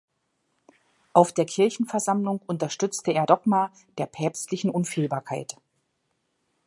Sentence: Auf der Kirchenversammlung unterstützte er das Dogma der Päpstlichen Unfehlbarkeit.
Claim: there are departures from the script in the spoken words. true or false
true